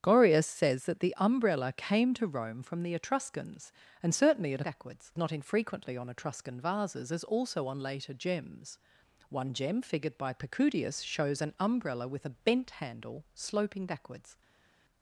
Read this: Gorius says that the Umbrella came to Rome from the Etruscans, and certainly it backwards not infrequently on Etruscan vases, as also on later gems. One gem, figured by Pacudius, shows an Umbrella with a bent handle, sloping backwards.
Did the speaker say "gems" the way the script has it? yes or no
yes